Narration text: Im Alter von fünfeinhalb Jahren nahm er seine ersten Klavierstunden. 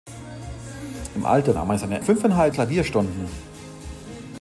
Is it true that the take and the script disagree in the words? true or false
true